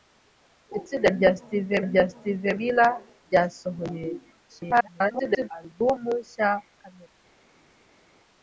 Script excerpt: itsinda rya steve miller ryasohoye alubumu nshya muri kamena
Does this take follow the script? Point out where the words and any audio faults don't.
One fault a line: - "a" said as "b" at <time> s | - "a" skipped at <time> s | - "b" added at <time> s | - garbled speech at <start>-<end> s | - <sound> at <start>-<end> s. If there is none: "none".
- "rya steve" added at 1.9 s
- garbled speech at 4.5-5.5 s
- "muri" skipped at 6.5 s